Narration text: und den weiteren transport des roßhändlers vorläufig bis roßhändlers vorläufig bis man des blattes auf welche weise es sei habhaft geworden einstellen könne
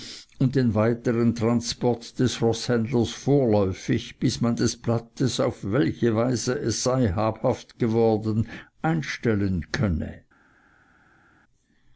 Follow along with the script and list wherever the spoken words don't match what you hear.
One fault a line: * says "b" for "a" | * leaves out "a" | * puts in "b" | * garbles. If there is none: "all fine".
* leaves out "roßhändlers vorläufig bis"